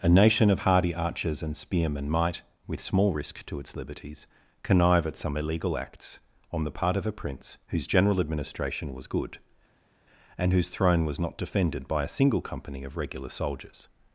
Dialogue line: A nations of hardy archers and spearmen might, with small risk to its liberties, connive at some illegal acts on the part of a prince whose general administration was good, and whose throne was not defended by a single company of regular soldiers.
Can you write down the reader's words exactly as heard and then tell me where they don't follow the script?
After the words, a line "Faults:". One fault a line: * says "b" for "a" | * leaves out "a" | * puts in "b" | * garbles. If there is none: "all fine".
A nation of hardy archers and spearmen might, with small risk to its liberties, connive at some illegal acts on the part of a prince whose general administration was good, and whose throne was not defended by a single company of regular soldiers.
Faults:
* says "nation" for "nations"